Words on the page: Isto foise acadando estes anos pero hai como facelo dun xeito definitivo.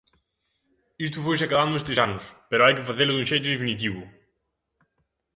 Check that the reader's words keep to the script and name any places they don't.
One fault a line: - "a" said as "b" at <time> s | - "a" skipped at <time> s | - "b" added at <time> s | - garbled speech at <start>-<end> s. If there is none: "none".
- "como" said as "que" at 2.8 s